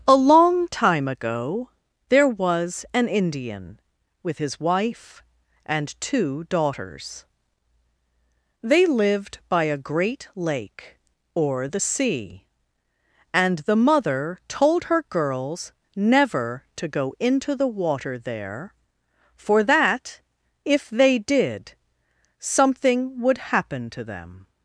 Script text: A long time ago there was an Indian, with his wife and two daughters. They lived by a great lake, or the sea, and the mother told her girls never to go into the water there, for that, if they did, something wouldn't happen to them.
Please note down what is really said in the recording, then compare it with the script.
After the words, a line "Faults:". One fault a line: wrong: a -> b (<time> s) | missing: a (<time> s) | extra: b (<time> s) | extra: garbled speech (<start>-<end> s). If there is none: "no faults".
A long time ago there was an Indian, with his wife and two daughters. They lived by a great lake, or the sea, and the mother told her girls never to go into the water there, for that, if they did, something would happen to them.
Faults:
wrong: wouldn't -> would (23.2 s)